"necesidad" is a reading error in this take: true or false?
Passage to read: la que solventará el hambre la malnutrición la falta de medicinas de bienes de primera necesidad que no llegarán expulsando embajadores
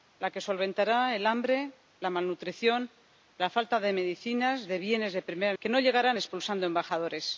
true